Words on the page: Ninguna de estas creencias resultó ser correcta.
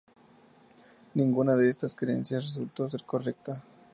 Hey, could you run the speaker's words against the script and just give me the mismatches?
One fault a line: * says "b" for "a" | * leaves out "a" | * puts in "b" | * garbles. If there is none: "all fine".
all fine